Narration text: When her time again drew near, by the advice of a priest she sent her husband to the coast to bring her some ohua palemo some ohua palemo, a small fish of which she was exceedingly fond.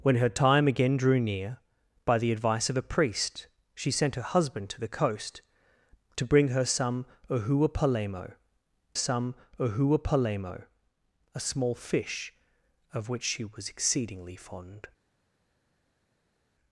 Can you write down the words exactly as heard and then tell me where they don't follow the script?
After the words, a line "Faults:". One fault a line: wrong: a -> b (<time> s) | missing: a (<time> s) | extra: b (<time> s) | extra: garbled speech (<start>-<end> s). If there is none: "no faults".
When her time again drew near, by the advice of a priest she sent her husband to the coast to bring her some ohua palemo some ohua palemo, a small fish of which she was exceedingly fond.
Faults:
no faults